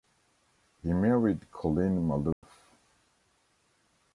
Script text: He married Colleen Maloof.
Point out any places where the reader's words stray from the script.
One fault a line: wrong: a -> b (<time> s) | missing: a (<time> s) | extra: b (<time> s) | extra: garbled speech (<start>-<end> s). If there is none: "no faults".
no faults